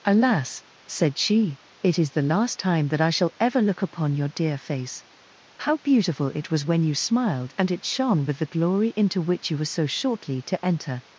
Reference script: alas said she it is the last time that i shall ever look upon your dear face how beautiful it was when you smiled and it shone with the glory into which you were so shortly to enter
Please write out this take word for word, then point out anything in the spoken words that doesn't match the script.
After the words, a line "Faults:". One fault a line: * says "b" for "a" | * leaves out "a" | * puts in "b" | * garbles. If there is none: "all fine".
alas said she it is the last time that i shall ever look upon your dear face how beautiful it was when you smiled and it shone with the glory into which you were so shortly to enter
Faults:
all fine